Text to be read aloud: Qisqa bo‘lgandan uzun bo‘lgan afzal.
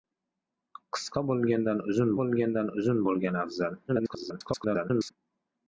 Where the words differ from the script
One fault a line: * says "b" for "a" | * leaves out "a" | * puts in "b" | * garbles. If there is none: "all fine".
* puts in "bo‘lgandan uzun"
* garbles